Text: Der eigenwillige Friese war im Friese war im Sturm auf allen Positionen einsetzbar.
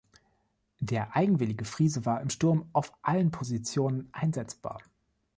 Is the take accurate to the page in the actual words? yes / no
no